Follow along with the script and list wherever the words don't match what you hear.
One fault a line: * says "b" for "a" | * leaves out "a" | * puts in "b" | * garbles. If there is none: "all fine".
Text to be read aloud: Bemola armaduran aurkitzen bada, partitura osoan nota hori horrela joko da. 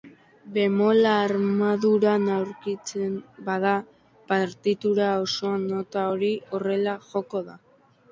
all fine